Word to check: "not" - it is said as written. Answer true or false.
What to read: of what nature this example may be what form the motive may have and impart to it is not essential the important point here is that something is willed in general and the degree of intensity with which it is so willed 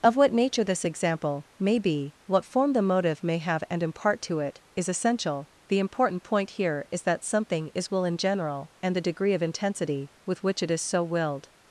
false